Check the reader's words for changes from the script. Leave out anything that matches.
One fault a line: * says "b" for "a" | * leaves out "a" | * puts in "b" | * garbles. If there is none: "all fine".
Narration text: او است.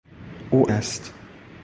all fine